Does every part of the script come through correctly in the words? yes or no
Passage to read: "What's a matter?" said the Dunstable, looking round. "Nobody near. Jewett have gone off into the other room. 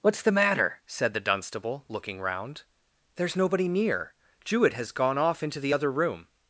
no